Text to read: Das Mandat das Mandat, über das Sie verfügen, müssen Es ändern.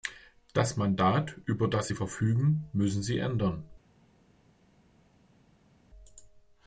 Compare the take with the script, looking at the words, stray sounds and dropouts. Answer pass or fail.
fail